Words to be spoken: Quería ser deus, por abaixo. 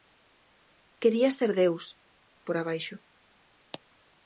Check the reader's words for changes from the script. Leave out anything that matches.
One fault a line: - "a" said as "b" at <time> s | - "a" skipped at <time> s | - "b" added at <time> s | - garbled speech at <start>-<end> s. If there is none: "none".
none